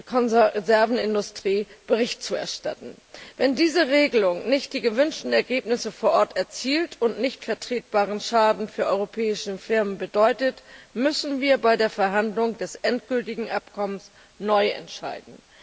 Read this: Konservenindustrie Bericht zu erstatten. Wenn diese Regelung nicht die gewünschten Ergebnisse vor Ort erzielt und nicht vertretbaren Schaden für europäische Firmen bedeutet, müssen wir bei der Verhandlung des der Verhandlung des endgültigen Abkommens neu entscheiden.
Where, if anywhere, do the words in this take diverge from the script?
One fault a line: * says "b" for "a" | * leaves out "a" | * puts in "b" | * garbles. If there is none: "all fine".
* leaves out "der Verhandlung des"